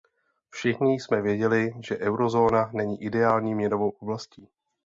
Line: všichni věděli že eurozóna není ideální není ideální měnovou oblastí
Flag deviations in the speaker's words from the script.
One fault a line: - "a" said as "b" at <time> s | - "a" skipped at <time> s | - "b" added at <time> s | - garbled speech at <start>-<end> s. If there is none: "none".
- "jsme" added at 0.9 s
- "není ideální" skipped at 3.5 s